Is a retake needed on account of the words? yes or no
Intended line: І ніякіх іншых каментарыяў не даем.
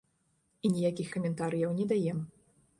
yes